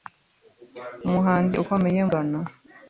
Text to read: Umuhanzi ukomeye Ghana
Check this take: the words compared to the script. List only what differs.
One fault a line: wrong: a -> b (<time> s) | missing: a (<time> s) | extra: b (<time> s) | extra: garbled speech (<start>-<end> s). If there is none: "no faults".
no faults